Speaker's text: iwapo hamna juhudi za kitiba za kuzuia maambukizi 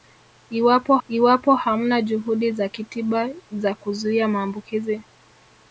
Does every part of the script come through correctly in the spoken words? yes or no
no